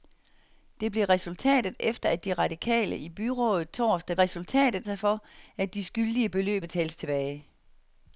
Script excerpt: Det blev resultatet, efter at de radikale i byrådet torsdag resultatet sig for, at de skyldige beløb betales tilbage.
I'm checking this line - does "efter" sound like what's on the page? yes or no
yes